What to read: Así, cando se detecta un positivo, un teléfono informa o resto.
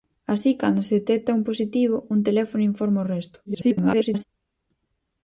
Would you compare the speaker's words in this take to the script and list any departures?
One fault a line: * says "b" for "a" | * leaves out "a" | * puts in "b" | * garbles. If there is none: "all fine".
* garbles